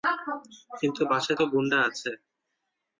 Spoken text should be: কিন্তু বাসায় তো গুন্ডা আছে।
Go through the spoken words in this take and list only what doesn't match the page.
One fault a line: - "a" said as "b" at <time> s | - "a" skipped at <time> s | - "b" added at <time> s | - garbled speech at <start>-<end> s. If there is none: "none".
none